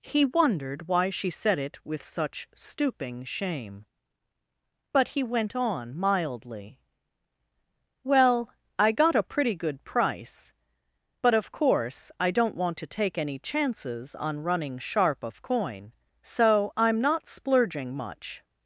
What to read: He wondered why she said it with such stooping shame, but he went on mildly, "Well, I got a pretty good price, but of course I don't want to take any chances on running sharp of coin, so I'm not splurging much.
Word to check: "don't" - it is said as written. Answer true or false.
true